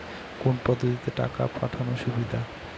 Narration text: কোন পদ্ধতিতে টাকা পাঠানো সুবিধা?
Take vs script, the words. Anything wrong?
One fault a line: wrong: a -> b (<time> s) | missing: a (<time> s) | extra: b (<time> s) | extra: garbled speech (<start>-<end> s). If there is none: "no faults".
no faults